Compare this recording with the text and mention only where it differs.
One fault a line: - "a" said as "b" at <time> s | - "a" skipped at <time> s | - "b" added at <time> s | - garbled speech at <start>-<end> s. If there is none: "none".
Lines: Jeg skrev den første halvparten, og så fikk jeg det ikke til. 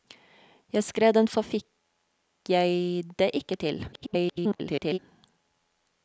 - "første halvparten og" skipped at 1.3 s
- garbled speech at 3.9-5.0 s